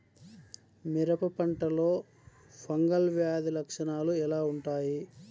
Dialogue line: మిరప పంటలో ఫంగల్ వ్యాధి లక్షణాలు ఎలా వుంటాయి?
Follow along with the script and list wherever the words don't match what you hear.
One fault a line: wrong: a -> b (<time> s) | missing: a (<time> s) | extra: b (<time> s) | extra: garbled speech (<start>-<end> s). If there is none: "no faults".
no faults